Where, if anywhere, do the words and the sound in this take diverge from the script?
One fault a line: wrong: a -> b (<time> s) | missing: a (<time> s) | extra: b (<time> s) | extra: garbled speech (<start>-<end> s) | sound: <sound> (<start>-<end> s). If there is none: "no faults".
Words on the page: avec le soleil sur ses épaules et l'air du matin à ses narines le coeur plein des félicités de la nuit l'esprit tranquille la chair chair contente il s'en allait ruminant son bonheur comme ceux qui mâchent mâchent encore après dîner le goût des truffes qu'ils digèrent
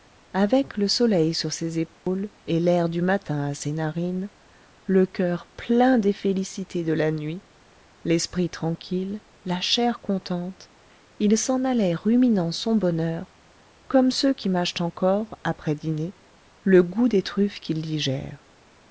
sound: dropout (1.9-2.1 s)
missing: chair (10.0 s)
missing: mâchent (14.8 s)